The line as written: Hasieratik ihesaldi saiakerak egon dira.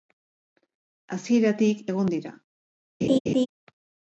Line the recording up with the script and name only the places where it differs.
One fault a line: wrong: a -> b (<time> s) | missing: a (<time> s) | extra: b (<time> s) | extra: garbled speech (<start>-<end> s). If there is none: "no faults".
missing: ihesaldi saiakerak (1.9 s)